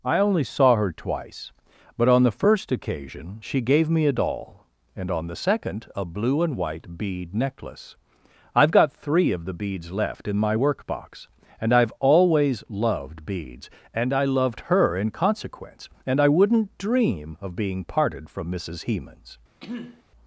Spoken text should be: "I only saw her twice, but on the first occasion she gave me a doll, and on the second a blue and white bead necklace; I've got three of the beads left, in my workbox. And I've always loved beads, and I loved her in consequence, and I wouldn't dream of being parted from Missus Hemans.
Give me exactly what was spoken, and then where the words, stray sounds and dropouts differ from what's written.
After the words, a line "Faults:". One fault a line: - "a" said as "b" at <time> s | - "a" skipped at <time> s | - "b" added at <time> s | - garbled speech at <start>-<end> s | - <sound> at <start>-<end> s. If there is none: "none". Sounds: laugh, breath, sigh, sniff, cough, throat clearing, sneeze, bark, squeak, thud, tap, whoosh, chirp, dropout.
"I only saw her twice, but on the first occasion she gave me a doll, and on the second a blue and white bead necklace; I've got three of the beads left, in my workbox. And I've always loved beads, and I loved her in consequence, and I wouldn't dream of being parted from Missus Hemans.
Faults:
- throat clearing at 19.6-20.0 s